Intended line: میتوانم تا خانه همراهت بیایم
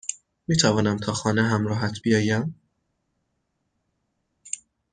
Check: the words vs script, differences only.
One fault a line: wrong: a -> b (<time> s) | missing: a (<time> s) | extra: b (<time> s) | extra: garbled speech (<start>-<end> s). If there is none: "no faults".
no faults